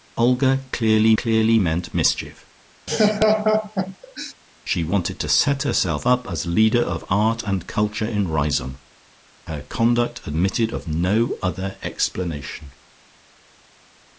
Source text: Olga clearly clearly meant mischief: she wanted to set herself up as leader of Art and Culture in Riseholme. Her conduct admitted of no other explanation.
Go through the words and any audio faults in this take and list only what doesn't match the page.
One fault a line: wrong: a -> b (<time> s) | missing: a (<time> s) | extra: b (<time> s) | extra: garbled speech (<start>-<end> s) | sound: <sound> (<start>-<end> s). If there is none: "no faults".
sound: laugh (2.9-4.3 s)